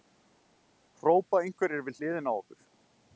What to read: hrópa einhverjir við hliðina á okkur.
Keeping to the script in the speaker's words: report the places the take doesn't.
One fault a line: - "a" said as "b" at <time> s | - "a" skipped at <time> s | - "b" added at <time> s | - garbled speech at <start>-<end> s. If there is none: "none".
none